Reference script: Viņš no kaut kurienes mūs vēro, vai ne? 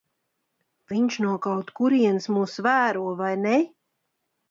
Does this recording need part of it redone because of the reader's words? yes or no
no